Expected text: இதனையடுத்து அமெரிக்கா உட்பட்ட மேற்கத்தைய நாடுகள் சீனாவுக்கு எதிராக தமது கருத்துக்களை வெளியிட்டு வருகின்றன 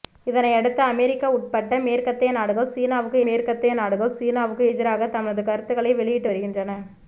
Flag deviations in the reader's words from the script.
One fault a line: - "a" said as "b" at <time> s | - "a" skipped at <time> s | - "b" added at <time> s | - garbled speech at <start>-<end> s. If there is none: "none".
- "மேற்கத்தைய நாடுகள் சீனாவுக்கு" added at 3.2 s